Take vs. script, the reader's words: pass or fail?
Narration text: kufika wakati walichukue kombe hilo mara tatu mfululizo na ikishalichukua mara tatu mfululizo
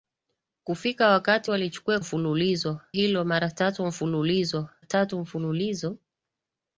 fail